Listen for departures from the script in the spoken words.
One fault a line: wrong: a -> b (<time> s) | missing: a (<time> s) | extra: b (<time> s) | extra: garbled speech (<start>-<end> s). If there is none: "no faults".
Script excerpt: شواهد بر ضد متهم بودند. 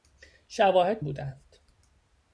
missing: بر ضد متهم (1.0 s)